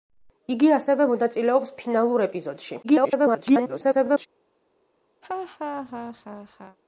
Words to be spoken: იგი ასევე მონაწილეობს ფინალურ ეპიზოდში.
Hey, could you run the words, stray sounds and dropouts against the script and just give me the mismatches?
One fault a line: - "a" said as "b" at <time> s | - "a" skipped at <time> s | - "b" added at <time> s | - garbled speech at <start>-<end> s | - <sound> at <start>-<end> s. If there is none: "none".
- garbled speech at 2.8-4.3 s
- laugh at 5.2-6.8 s